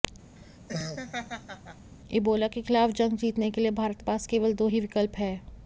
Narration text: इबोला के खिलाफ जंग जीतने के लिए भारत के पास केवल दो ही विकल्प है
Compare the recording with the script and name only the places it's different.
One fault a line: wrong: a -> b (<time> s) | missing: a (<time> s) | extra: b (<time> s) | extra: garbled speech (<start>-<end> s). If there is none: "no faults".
missing: के (4.0 s)